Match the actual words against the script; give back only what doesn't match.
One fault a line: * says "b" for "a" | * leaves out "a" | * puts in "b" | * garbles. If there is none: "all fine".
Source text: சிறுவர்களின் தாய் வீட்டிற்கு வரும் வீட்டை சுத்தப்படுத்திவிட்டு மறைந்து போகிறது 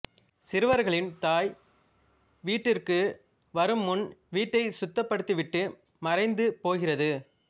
* puts in "முன்"